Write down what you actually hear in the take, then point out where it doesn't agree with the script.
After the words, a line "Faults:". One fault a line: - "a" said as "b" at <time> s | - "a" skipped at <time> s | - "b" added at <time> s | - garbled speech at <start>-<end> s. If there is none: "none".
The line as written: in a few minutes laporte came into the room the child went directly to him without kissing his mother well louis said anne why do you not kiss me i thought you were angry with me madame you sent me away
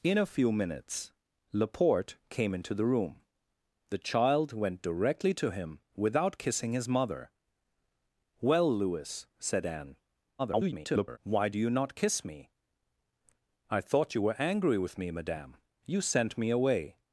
in a few minutes laporte came into the room the child went directly to him without kissing his mother well louis said anne [garbled] why do you not kiss me i thought you were angry with me madame you sent me away
Faults:
- garbled speech at 10.4-11.2 s